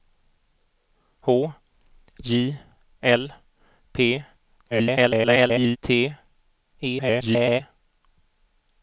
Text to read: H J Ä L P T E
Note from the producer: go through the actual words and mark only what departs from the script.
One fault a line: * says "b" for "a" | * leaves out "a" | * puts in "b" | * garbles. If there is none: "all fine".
* leaves out "Ä"
* garbles
* garbles